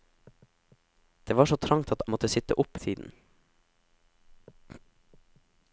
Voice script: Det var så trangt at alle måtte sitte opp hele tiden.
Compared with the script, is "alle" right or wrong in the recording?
wrong